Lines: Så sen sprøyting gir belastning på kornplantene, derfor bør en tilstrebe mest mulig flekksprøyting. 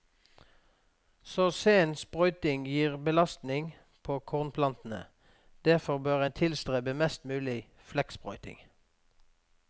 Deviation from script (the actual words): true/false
false